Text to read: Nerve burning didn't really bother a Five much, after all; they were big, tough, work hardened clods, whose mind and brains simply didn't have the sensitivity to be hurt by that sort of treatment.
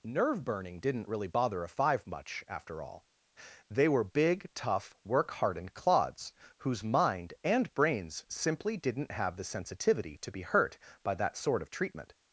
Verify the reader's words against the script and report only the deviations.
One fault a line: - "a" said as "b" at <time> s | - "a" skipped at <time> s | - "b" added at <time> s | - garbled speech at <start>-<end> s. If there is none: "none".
none